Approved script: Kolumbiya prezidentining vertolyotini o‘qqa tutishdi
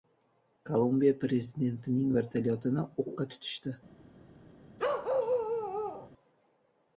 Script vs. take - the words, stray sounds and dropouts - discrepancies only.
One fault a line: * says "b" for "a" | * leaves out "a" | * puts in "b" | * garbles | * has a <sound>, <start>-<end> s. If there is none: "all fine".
* has a bark, 4.8-6.1 s